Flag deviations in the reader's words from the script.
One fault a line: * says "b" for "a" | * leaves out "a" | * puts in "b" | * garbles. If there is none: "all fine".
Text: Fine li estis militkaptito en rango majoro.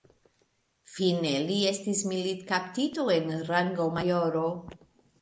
all fine